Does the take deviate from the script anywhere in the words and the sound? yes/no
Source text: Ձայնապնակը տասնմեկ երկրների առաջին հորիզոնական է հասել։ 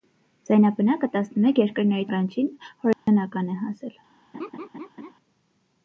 yes